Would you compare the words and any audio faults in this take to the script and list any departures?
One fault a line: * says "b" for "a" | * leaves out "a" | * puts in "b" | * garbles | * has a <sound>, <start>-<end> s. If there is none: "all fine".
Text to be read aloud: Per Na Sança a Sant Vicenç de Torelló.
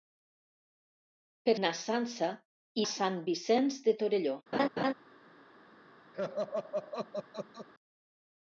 * has a laugh, 4.5-4.9 s
* has a laugh, 6.1-7.7 s